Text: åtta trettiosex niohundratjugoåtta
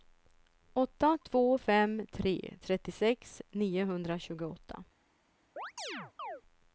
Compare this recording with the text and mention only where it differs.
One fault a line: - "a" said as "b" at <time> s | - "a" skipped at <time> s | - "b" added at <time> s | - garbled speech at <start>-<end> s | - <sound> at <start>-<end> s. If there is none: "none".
- "två fem tre" added at 1.2 s
- chirp at 5.6-6.4 s